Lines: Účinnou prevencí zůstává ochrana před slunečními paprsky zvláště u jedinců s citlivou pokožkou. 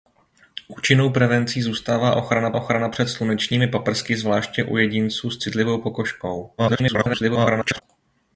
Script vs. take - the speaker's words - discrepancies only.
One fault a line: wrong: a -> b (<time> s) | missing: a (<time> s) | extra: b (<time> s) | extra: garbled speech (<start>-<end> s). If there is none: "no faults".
extra: ochrana (2.5 s)
extra: garbled speech (6.6-7.8 s)